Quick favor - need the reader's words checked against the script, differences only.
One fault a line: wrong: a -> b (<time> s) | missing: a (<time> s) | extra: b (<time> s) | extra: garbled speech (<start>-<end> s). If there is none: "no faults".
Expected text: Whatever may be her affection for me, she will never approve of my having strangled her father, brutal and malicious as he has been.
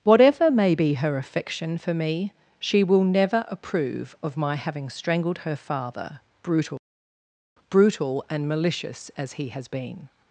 extra: brutal (7.7 s)